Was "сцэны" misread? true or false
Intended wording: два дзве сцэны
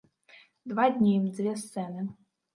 false